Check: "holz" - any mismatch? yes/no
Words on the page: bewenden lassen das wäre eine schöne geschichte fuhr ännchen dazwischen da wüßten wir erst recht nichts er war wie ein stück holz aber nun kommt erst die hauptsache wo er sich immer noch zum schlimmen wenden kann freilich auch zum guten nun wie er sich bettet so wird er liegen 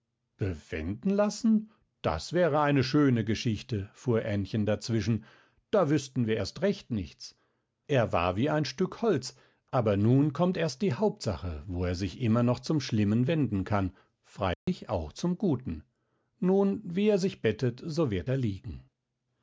no